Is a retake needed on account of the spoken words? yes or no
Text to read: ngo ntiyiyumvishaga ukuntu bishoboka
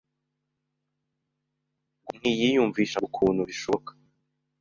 no